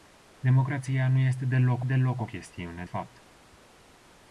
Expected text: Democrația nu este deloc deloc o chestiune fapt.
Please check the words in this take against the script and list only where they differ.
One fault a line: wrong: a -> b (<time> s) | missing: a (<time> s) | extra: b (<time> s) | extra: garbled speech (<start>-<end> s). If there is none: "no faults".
no faults